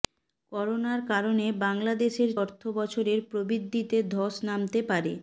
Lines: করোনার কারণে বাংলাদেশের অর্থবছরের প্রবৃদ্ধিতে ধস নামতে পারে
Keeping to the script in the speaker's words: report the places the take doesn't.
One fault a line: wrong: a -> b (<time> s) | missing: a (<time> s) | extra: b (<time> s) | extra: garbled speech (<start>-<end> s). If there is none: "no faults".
no faults